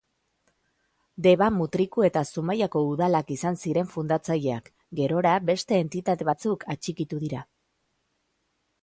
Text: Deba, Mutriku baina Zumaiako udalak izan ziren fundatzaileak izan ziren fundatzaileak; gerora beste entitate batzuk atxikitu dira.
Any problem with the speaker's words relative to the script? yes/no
yes